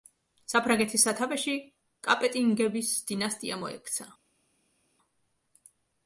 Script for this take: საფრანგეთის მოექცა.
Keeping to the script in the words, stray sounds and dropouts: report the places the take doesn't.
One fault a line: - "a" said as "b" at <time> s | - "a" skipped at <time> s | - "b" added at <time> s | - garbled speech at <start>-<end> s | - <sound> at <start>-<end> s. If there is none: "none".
- "სათავეში კაპეტინგების დინასტია" added at 1.1 s